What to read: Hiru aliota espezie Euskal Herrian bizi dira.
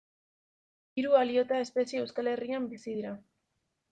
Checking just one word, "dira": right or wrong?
right